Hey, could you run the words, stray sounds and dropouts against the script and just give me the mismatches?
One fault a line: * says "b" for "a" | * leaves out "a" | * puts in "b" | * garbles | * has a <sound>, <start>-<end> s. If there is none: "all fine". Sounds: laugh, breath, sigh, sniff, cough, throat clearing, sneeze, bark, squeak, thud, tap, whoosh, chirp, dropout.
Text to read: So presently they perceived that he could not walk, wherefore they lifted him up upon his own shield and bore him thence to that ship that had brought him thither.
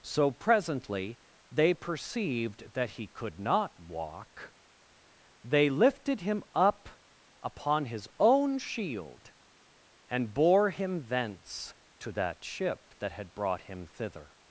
* leaves out "wherefore"